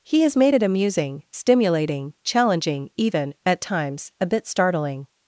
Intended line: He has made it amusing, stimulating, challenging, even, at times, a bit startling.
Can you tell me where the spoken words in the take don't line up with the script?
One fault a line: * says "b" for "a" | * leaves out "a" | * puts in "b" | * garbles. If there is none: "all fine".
all fine